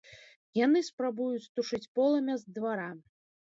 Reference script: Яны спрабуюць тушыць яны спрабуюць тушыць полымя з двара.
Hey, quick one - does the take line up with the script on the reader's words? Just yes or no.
no